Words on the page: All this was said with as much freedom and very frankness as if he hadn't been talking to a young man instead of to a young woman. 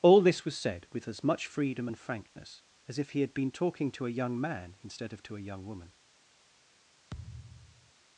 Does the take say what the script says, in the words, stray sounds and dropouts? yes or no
no